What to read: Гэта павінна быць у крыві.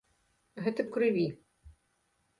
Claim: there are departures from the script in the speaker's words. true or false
true